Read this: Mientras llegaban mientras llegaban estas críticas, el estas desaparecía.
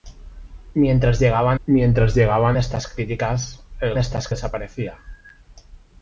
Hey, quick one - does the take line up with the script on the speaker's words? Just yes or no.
yes